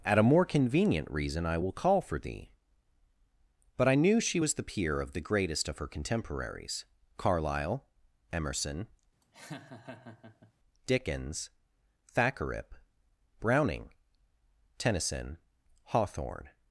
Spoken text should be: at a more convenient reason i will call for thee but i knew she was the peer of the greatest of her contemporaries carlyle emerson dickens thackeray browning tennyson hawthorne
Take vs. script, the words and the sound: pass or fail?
fail